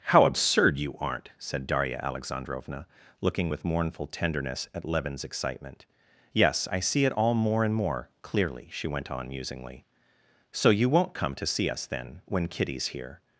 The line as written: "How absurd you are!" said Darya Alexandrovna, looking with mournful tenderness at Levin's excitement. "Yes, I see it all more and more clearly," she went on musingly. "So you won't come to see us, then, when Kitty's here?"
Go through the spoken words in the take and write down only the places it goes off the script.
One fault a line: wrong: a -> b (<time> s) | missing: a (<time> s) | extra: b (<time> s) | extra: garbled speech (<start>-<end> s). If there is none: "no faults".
wrong: are -> aren't (1.0 s)